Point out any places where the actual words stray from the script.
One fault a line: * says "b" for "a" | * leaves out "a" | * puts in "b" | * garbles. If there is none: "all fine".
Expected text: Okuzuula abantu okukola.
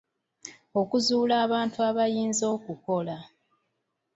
* puts in "abayinza"